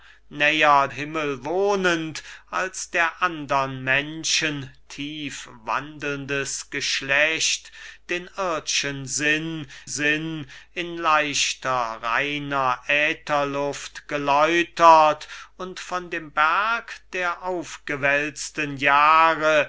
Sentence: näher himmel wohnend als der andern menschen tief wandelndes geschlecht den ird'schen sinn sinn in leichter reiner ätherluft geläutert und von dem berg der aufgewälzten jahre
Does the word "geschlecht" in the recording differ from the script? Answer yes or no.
no